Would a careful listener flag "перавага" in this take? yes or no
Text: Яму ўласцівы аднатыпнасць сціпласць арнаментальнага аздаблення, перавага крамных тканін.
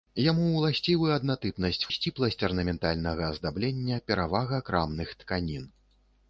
no